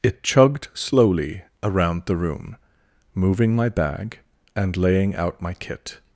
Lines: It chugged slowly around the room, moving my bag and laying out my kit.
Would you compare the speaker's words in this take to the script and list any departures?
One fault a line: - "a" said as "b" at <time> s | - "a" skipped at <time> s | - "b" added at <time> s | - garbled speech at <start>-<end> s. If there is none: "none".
none